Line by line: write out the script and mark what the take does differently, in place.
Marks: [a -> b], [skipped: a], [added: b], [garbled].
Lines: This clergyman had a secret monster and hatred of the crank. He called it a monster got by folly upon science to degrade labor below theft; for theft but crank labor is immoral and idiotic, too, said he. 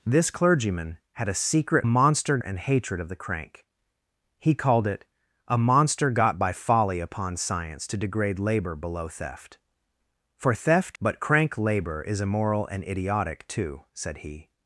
This clergyman had a secret monster and hatred of the crank. He called it a monster got by folly upon science to degrade labor below theft; for theft but crank labor is immoral and idiotic, too, said he.